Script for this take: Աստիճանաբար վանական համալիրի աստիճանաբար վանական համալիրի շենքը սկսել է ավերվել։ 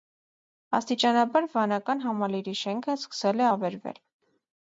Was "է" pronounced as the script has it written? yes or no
yes